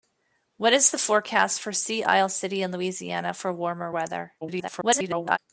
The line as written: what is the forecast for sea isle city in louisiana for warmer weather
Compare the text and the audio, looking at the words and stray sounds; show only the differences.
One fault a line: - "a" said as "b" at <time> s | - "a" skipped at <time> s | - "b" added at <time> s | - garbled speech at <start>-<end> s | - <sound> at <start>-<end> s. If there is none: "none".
- garbled speech at 4.4-5.4 s